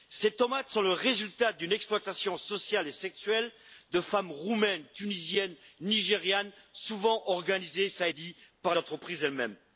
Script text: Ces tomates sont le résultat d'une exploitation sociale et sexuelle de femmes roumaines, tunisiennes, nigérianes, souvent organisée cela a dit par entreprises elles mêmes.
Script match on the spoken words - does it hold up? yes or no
yes